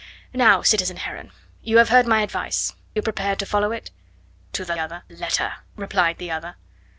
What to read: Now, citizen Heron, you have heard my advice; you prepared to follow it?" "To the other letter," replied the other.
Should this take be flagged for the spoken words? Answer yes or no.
no